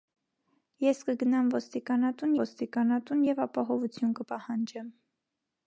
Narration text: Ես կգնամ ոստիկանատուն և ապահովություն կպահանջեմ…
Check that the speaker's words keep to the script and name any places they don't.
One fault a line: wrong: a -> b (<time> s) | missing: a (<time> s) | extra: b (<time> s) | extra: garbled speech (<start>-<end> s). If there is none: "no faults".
extra: ոստիկանատուն (2.4 s)